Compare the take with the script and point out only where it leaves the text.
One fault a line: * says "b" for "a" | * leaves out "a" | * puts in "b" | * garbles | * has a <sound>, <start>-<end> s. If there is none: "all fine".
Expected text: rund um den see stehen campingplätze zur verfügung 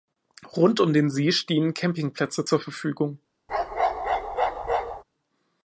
* has a bark, 3.5-5.0 s